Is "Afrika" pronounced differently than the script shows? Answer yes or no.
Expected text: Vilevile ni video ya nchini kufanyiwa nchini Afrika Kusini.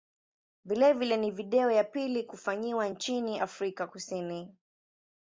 no